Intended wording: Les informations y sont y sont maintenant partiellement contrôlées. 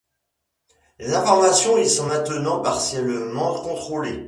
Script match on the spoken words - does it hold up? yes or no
no